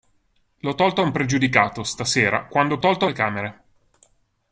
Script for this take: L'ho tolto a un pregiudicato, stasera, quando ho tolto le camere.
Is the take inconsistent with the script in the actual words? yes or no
no